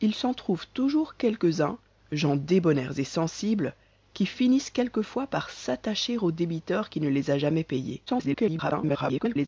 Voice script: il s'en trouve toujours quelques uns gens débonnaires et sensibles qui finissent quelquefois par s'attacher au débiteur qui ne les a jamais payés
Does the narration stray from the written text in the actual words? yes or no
yes